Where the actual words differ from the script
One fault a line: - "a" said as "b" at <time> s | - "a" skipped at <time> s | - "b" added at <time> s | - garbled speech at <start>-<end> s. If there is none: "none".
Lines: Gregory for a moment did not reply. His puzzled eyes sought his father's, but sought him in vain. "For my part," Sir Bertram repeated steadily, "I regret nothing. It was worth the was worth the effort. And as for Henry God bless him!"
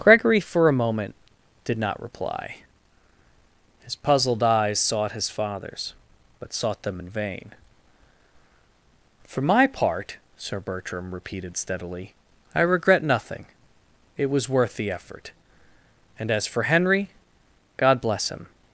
- "him" said as "them" at 6.8 s
- "was worth the" skipped at 14.9 s